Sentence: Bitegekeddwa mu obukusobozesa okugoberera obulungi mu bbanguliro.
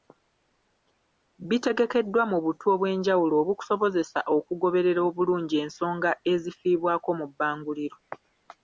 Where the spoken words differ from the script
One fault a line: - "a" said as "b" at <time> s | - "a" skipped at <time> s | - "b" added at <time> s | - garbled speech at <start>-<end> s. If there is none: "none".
- "butu obw'enjawulo" added at 2.5 s
- "ensonga ezifiibwako" added at 5.6 s